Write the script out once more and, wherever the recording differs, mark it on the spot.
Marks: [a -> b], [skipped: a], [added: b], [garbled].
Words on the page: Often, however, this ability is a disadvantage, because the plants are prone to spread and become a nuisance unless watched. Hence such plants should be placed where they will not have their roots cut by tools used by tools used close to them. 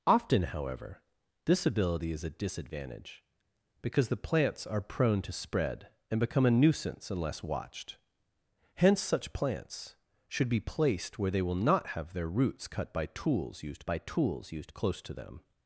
Often, however, this ability is a disadvantage, because the plants are prone to spread and become a nuisance unless watched. Hence such plants should be placed where they will not have their roots cut by tools used by tools used close to them.